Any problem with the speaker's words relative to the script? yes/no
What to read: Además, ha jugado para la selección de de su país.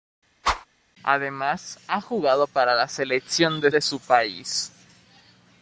no